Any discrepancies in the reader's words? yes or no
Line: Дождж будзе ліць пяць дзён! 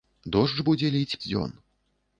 yes